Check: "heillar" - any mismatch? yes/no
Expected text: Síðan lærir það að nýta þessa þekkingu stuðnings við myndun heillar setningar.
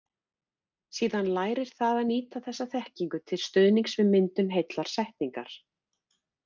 no